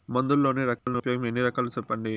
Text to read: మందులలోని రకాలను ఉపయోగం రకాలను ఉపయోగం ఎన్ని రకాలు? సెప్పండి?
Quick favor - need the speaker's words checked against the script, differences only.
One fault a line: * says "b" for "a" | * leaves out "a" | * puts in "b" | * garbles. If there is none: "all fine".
* leaves out "రకాలను ఉపయోగం"